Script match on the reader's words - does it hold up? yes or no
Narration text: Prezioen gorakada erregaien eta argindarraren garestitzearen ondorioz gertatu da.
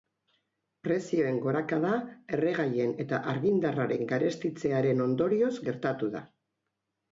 yes